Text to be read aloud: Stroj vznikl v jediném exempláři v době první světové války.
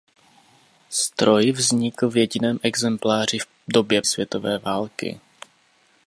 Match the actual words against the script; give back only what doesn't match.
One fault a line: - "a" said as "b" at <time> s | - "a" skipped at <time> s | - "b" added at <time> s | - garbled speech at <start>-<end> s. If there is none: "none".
- "první" skipped at 4.0 s